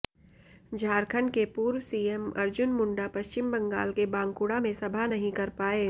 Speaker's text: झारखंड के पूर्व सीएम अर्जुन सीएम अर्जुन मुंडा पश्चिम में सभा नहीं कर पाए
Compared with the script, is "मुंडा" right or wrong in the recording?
wrong